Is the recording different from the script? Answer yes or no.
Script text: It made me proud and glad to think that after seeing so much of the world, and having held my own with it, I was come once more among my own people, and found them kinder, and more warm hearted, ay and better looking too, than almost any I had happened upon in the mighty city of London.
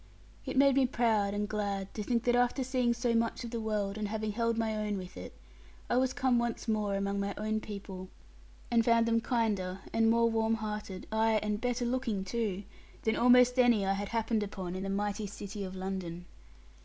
no